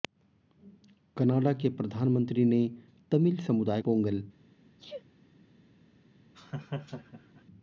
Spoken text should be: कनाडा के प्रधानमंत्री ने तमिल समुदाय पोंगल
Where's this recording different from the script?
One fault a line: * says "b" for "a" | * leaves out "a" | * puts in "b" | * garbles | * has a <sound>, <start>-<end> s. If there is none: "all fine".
* has a sneeze, 4.8-5.0 s
* has a laugh, 6.3-7.4 s